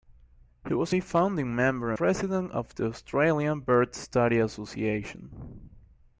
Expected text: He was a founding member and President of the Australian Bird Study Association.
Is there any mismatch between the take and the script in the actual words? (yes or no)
yes